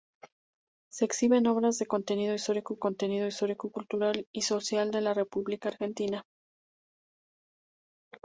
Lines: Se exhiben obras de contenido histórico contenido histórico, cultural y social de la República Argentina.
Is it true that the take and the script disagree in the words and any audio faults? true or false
false